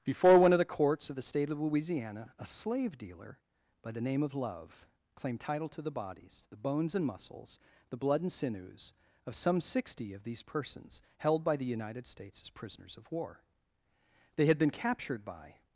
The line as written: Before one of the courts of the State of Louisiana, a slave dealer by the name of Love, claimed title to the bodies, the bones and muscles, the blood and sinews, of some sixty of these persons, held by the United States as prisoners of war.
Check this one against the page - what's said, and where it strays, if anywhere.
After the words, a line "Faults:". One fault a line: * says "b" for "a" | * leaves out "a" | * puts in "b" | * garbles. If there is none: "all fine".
Before one of the courts of the State of Louisiana, a slave dealer by the name of Love, claimed title to the bodies, the bones and muscles, the blood and sinews, of some sixty of these persons, held by the United States as prisoners of war. They had been captured by
Faults:
* puts in "They had been captured by"